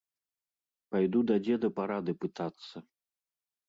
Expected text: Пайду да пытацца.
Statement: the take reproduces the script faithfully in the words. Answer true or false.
false